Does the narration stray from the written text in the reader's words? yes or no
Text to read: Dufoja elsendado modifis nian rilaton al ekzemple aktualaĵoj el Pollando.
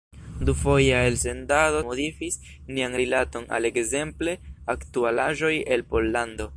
no